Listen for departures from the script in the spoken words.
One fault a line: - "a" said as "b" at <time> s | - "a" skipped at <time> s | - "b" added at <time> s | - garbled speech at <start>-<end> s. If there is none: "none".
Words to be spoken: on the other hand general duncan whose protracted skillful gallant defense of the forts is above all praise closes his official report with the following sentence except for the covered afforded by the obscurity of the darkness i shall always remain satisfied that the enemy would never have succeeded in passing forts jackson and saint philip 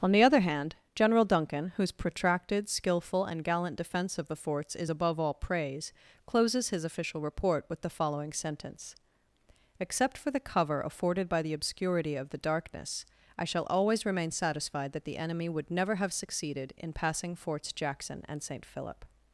- "and" added at 3.2 s
- "covered" said as "cover" at 10.4 s